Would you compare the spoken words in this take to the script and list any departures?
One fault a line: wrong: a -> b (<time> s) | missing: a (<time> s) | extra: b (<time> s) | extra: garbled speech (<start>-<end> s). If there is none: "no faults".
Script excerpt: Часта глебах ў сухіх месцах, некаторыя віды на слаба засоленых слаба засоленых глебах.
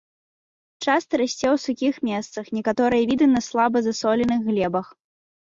wrong: глебах -> расце (1.2 s)
missing: слаба засоленых (4.4 s)